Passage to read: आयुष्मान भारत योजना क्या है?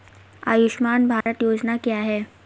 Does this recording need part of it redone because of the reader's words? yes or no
no